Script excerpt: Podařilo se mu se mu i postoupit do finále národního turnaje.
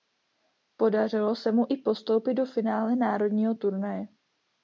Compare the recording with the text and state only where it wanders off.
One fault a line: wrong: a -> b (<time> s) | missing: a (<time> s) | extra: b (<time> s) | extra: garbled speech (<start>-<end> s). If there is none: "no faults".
missing: se mu (1.7 s)